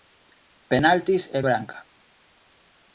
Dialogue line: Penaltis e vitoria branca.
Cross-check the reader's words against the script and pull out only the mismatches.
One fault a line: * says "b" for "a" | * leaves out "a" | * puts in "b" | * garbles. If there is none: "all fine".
* leaves out "vitoria"